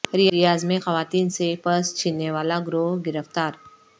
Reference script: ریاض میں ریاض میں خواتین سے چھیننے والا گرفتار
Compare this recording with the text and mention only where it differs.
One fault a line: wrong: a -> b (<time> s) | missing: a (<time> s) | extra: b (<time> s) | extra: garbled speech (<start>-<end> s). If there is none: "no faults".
missing: ریاض میں (0.8 s)
extra: پرس (1.6 s)
extra: گروہ (2.7 s)